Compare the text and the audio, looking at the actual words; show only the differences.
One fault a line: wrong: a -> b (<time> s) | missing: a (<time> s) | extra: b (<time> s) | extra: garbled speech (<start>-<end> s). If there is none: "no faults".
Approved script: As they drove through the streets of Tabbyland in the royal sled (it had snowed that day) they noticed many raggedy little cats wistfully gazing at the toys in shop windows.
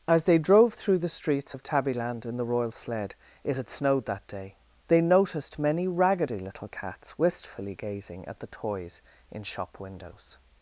no faults